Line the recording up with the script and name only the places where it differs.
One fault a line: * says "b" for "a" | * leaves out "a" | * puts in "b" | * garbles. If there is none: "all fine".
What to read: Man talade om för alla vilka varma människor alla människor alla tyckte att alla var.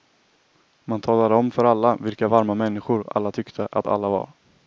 * leaves out "människor alla"